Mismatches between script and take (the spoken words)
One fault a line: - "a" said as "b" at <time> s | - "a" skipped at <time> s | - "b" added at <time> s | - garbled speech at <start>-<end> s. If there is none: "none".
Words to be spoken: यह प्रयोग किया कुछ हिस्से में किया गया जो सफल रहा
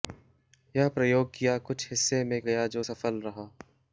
- "किया" skipped at 2.4 s